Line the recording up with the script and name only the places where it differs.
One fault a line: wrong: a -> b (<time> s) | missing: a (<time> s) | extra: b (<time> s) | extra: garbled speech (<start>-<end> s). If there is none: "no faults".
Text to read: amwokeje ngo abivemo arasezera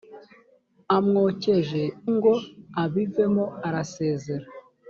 no faults